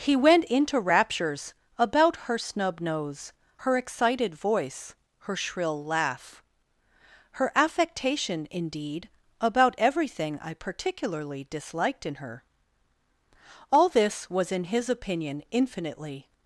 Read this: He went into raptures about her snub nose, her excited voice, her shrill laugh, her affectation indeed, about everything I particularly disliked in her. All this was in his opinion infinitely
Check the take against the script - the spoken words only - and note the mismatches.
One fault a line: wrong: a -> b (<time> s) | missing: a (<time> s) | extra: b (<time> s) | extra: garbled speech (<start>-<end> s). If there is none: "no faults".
no faults